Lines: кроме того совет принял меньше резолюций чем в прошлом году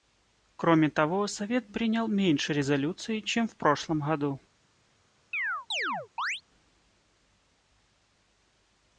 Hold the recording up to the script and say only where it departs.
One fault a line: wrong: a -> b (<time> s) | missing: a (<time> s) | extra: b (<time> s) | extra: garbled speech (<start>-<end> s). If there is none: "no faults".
no faults